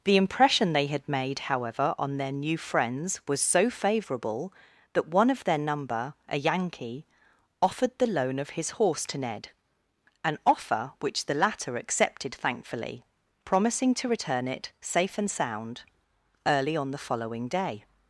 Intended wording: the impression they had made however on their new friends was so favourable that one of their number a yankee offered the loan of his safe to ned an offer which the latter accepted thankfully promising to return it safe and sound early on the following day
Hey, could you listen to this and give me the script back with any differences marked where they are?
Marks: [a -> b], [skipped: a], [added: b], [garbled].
the impression they had made however on their new friends was so favourable that one of their number a yankee offered the loan of his [safe -> horse] to ned an offer which the latter accepted thankfully promising to return it safe and sound early on the following day